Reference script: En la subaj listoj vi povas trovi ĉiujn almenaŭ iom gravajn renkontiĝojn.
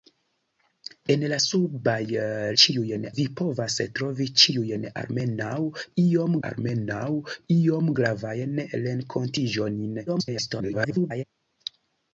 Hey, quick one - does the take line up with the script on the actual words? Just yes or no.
no